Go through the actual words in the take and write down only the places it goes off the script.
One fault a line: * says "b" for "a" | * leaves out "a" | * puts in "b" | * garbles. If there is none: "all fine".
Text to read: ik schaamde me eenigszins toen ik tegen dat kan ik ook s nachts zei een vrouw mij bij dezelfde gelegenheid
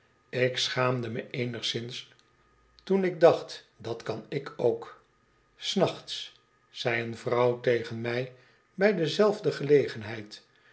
* says "dacht" for "tegen"
* puts in "tegen"